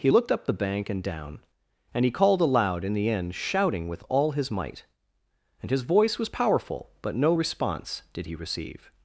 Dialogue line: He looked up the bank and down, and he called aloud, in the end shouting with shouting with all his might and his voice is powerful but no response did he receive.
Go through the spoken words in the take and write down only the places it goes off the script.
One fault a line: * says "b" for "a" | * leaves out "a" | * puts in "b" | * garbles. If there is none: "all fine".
* leaves out "shouting with"
* says "was" for "is"